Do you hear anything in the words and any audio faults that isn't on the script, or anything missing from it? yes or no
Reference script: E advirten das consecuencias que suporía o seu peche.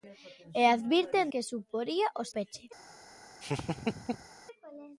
yes